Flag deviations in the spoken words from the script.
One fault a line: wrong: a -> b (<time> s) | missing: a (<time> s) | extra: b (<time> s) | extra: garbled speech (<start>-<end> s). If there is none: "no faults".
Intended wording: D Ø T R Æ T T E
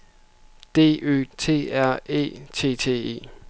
no faults